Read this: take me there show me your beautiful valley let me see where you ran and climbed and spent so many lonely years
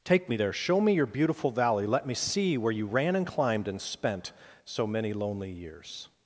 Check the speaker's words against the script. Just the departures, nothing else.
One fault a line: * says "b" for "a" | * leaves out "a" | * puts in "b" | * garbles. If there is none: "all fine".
all fine